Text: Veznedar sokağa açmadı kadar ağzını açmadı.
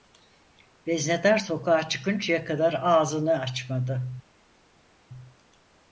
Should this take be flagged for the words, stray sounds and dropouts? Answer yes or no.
yes